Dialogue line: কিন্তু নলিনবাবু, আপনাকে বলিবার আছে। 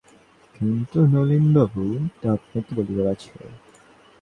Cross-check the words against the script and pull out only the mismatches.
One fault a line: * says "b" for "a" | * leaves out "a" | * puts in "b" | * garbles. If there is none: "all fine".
all fine